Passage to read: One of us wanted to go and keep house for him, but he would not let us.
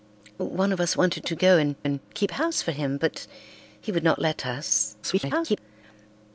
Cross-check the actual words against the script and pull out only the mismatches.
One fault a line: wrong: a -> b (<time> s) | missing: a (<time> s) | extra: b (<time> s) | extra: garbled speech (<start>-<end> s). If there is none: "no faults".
extra: and (1.8 s)
extra: garbled speech (5.0-5.6 s)